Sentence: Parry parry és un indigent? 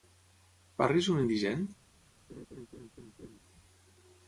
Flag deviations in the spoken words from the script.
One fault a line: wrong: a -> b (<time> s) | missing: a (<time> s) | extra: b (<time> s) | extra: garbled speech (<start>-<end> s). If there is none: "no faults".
missing: parry (1.0 s)